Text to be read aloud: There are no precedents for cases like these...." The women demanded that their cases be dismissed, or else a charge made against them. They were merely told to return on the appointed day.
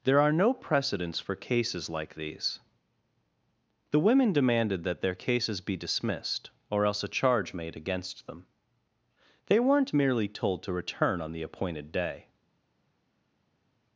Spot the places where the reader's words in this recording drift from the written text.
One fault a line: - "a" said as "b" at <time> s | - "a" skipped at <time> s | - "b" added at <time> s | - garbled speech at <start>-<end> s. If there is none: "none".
- "were" said as "weren't" at 9.6 s